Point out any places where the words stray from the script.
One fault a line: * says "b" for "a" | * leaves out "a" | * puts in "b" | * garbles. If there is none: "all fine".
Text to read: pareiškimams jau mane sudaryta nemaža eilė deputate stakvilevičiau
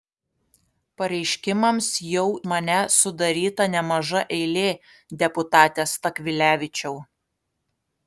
all fine